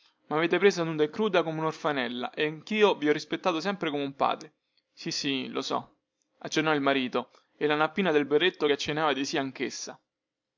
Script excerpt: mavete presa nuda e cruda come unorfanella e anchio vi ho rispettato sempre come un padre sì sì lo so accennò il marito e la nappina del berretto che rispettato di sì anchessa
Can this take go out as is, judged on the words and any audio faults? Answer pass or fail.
fail